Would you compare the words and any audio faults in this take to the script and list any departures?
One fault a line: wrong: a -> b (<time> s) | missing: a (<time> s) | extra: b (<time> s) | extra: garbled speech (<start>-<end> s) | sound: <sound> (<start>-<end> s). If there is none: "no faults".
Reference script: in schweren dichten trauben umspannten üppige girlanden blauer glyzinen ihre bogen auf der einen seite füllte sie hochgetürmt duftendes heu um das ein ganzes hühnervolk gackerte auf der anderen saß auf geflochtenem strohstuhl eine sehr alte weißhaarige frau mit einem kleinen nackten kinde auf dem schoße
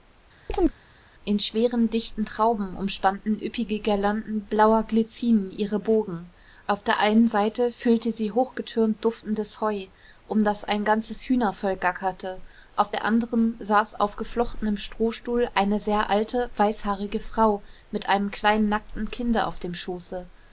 sound: chirp (0.5-0.8 s)